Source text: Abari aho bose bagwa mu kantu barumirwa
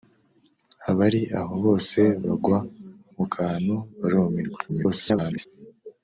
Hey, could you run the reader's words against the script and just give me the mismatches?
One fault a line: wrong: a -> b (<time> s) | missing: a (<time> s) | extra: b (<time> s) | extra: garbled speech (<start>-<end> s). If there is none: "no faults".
extra: garbled speech (4.7-5.5 s)